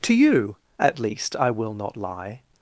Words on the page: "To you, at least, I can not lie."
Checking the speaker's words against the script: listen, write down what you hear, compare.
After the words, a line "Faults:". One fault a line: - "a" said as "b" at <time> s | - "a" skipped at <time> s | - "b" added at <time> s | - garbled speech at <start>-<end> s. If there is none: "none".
"To you, at least, I will not lie."
Faults:
- "can" said as "will" at 1.5 s